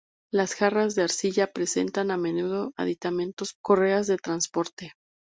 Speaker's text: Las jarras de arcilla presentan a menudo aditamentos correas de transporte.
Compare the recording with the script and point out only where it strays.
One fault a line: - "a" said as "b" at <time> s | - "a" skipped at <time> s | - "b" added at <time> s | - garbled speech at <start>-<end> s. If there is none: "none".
none